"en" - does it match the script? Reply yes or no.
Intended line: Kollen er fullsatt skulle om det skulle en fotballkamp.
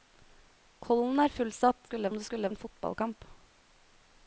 yes